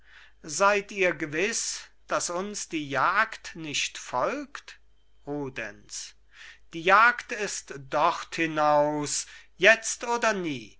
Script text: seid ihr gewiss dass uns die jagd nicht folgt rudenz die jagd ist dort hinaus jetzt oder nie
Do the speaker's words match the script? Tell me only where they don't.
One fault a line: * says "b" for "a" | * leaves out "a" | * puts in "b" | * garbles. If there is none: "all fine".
all fine